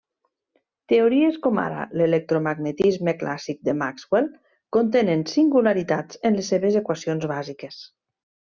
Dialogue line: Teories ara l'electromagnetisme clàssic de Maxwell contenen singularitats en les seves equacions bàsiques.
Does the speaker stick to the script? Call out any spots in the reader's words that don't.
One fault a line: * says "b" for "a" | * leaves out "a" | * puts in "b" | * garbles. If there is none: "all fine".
* puts in "com"